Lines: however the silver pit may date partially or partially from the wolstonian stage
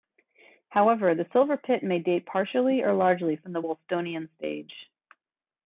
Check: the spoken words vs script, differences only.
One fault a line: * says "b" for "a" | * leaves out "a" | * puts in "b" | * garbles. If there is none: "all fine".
* says "largely" for "partially"